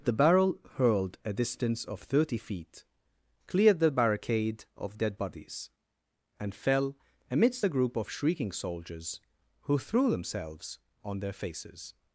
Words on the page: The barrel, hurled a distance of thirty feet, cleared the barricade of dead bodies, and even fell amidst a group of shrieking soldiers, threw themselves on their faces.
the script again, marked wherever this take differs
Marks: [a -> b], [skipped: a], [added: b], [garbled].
The barrel, hurled a distance of thirty feet, cleared the barricade of dead bodies, and [skipped: even] fell amidst a group of shrieking soldiers, [added: who] threw themselves on their faces.